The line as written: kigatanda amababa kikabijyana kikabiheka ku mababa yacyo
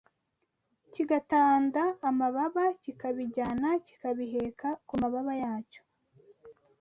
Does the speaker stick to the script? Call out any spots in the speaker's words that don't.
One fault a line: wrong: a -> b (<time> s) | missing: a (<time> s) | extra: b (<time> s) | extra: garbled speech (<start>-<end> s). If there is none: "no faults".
no faults